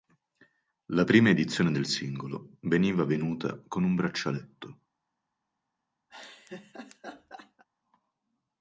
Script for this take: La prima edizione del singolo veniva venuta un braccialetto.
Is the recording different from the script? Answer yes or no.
yes